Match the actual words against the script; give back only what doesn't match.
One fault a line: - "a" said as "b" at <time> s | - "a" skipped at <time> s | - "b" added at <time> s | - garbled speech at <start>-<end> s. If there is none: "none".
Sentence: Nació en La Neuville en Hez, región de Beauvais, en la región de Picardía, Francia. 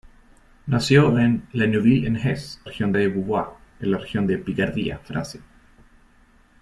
none